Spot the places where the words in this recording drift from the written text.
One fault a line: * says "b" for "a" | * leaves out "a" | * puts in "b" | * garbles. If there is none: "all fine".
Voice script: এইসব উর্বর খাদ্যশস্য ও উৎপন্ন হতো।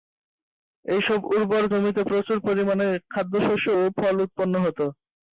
* puts in "জমিতে প্রচুর পরিমাণে"
* puts in "ফল"